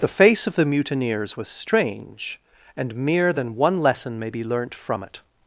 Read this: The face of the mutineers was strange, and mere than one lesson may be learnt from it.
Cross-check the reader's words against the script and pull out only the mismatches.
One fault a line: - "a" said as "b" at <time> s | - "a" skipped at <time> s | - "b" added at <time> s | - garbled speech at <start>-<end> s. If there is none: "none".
none